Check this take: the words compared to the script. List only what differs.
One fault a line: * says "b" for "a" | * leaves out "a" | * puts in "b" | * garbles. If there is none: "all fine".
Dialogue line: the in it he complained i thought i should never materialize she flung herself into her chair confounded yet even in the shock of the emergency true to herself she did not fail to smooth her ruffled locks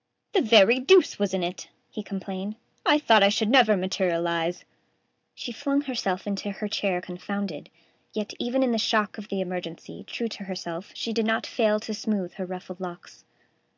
* puts in "very deuce was"